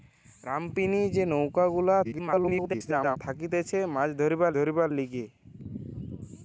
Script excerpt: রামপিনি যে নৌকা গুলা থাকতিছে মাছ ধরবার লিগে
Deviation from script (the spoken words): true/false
true